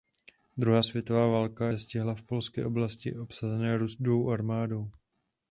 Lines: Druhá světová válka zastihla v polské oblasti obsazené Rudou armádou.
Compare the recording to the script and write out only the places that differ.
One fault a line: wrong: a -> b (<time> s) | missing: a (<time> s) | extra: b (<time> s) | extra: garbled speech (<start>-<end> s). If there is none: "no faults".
no faults